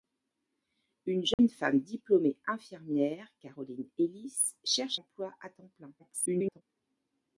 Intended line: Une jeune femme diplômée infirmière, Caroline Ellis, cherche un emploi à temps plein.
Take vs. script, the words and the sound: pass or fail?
fail